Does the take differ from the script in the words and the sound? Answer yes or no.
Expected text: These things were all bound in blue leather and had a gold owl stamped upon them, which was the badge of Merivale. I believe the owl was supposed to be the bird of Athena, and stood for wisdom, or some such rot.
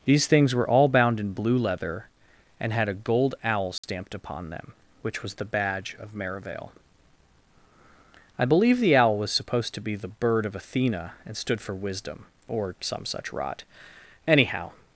yes